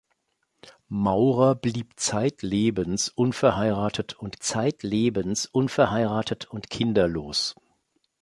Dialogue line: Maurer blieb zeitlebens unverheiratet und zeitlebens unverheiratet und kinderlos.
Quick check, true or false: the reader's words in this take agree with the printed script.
true